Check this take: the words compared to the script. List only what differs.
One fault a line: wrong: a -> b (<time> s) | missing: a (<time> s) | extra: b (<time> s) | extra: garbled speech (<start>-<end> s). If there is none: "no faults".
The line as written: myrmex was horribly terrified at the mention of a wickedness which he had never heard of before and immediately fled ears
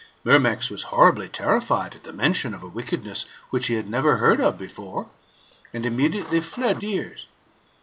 no faults